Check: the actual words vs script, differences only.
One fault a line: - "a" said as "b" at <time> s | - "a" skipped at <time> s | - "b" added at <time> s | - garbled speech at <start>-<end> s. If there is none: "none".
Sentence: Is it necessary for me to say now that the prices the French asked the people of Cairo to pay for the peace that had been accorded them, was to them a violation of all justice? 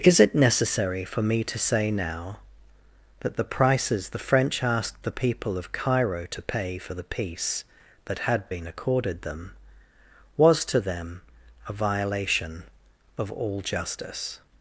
none